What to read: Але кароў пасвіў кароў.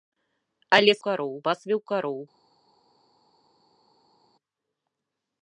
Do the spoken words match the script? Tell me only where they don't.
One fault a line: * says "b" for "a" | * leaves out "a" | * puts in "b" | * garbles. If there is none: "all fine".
all fine